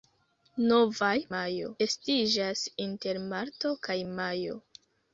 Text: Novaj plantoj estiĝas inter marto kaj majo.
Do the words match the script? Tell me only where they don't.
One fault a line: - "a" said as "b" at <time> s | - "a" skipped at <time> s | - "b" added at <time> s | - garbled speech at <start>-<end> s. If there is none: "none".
- "plantoj" said as "majo" at 1.4 s